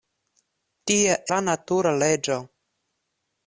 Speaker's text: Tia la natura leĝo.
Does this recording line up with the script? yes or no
yes